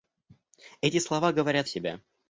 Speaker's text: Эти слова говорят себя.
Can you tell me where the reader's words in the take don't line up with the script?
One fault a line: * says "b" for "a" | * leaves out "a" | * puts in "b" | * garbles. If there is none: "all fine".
all fine